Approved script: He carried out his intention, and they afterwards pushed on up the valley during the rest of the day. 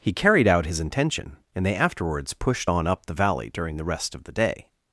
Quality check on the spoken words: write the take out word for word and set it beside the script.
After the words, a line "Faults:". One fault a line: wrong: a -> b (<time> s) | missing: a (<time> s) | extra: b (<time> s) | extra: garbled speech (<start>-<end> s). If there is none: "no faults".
He carried out his intention, and they afterwards pushed on up the valley during the rest of the day.
Faults:
no faults